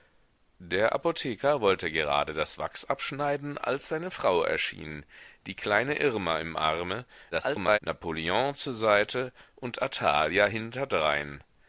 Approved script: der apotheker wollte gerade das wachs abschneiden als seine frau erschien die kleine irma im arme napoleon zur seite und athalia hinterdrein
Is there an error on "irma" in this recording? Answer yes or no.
no